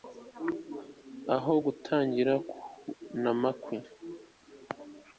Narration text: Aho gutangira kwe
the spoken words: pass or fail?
fail